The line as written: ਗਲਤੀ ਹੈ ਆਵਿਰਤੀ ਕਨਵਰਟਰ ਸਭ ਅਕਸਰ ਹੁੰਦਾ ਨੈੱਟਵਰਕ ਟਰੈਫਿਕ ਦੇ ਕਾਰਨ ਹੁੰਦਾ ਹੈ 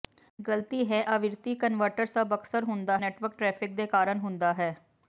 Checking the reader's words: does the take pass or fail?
pass